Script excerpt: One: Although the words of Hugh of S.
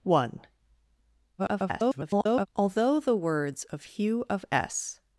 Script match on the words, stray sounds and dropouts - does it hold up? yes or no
no